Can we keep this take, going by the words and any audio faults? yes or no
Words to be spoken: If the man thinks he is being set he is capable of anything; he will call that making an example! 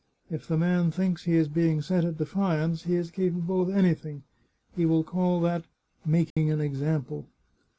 no